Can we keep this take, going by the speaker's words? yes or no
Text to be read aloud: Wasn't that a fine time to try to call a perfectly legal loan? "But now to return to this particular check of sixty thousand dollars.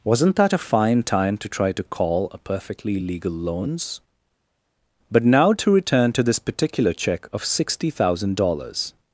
no